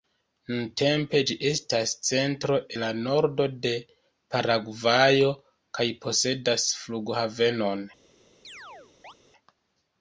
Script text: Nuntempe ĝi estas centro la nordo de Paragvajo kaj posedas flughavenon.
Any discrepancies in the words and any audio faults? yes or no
yes